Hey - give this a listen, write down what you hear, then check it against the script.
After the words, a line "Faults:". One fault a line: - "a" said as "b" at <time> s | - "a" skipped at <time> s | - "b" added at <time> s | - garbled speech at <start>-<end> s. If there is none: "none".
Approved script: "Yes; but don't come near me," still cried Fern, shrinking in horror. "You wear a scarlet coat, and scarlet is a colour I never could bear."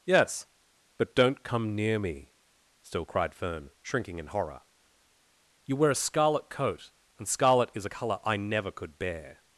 "Yes; but don't come near me," still cried Fern, shrinking in horror. "You wear a scarlet coat, and scarlet is a colour I never could bear."
Faults:
none